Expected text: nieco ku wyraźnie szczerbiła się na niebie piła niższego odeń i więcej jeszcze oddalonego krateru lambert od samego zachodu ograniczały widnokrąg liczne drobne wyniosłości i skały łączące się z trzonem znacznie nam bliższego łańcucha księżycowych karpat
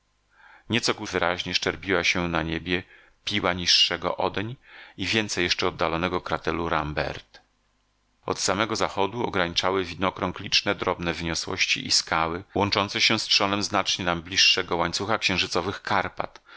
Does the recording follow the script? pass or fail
pass